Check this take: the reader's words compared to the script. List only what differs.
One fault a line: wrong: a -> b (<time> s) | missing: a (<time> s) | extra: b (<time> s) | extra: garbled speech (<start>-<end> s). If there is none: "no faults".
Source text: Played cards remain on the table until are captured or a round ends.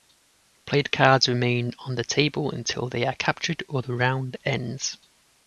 extra: they (2.9 s)
wrong: a -> the (3.8 s)